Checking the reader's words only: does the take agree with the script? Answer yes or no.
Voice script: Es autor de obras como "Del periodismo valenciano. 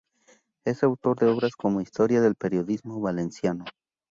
no